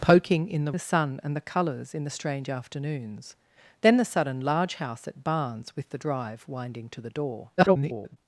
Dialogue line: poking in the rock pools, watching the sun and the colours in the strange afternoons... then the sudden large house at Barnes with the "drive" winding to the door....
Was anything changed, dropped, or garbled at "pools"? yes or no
yes